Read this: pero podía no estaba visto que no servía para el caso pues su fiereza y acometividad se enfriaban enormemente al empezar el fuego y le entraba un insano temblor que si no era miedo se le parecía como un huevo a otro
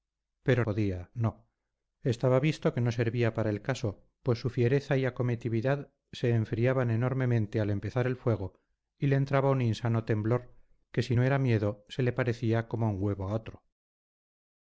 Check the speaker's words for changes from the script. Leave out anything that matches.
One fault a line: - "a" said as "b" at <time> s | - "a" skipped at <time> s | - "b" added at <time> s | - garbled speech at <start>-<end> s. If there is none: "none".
none